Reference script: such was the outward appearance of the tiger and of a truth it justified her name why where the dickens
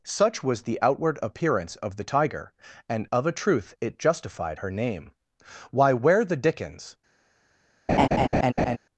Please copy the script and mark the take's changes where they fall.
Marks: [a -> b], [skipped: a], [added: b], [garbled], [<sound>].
such was the outward appearance of the tiger and of a truth it justified her name why where the dickens [laugh]